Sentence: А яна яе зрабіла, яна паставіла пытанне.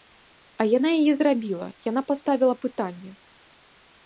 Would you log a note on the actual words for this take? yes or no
no